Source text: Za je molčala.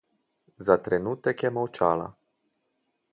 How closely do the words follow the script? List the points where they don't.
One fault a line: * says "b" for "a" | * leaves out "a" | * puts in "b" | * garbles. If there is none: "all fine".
* puts in "trenutek"